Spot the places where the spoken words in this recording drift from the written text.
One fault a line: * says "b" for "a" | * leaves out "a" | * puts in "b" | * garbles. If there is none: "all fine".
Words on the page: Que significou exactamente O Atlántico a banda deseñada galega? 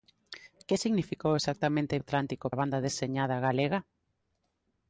all fine